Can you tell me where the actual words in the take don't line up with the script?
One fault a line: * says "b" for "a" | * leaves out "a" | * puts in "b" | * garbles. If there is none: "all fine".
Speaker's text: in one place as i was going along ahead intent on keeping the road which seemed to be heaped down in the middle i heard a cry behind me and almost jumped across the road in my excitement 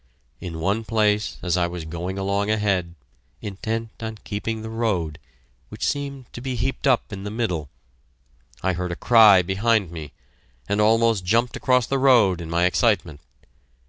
* says "up" for "down"